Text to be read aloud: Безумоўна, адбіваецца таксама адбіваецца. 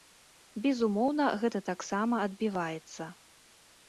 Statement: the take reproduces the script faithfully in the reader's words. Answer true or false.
false